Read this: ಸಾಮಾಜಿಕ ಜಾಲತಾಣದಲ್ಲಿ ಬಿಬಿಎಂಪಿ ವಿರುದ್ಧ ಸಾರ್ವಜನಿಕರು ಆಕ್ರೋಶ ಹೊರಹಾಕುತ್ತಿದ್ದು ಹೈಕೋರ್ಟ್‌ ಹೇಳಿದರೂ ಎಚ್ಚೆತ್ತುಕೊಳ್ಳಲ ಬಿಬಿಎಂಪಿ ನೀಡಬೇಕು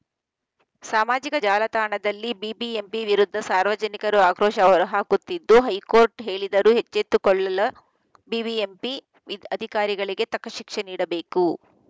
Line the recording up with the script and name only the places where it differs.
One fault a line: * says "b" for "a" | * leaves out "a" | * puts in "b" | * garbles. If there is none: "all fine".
* puts in "ಅಧಿಕಾರಿಗಳಿಗೆ ತಕ್ಕ ಶಿಕ್ಷೆ"